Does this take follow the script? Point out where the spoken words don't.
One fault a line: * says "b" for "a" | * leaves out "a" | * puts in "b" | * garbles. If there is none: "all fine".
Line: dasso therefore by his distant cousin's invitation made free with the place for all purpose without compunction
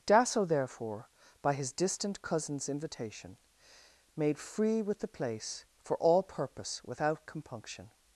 all fine